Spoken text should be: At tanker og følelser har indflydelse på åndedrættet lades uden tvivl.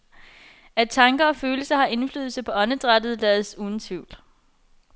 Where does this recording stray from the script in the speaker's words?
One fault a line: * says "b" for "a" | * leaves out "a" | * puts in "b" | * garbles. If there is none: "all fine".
all fine